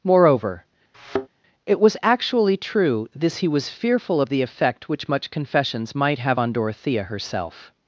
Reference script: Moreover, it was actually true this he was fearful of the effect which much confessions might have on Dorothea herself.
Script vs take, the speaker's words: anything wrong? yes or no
no